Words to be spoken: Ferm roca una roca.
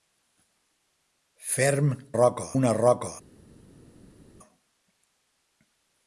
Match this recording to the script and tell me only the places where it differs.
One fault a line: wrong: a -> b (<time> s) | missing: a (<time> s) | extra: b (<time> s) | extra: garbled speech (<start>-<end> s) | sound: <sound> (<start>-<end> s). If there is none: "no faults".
no faults